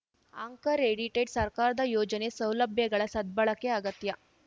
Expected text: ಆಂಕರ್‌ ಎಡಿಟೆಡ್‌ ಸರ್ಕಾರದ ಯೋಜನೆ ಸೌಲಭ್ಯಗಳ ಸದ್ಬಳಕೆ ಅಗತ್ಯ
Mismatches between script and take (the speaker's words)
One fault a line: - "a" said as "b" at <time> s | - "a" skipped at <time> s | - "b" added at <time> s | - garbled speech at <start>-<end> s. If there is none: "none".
none